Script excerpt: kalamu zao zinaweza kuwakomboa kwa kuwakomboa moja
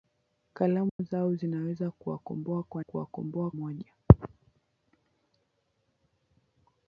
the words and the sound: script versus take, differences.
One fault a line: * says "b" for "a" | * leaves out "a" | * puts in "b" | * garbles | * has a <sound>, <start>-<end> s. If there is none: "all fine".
* has a dropout, 0.9-1.0 s